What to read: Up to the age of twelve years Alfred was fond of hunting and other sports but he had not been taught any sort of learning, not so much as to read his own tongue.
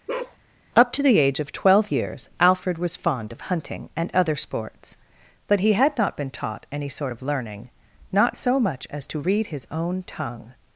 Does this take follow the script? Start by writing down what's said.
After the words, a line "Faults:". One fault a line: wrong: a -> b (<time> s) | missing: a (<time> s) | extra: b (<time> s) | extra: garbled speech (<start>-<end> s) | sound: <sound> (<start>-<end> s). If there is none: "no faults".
Up to the age of twelve years Alfred was fond of hunting and other sports but he had not been taught any sort of learning, not so much as to read his own tongue.
Faults:
sound: bark (0.1-0.4 s)